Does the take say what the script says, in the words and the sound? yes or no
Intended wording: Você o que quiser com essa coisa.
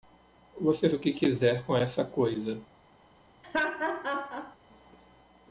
no